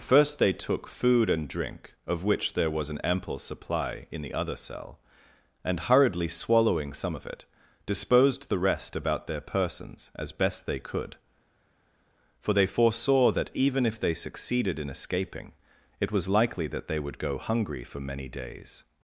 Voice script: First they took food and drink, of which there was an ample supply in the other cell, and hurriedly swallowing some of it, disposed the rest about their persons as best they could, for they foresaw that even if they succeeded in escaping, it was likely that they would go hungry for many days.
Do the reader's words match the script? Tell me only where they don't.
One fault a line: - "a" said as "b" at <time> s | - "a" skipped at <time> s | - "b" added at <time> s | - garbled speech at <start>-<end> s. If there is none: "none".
none